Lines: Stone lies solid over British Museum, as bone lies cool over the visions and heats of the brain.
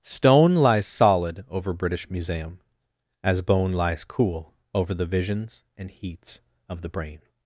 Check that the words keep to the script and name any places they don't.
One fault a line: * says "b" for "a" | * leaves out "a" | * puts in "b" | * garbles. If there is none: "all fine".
all fine